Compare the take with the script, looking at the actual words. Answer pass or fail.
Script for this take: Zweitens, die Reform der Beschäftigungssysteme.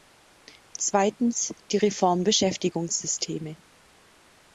fail